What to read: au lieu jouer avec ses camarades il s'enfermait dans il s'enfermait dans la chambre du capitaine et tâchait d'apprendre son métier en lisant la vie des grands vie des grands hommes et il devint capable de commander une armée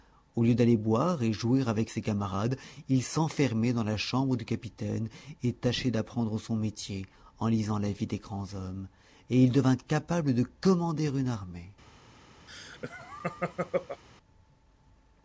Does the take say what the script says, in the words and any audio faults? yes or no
no